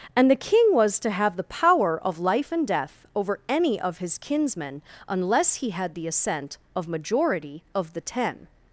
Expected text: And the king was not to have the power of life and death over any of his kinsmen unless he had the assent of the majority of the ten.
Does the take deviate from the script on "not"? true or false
true